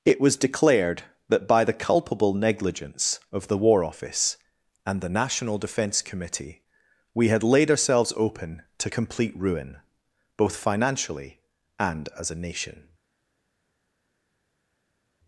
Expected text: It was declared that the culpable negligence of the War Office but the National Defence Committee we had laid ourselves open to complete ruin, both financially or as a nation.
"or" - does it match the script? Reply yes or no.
no